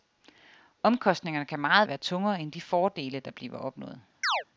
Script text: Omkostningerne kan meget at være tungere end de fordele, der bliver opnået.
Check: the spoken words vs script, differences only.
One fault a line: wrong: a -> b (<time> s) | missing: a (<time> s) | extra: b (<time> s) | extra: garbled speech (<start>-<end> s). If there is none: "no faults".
no faults